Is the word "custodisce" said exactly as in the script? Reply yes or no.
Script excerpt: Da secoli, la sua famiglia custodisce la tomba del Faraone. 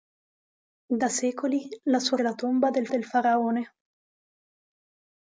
no